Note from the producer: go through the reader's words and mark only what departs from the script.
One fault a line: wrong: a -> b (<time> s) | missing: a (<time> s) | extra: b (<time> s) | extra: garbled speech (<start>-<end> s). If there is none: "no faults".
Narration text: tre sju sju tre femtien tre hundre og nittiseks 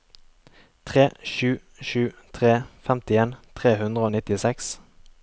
no faults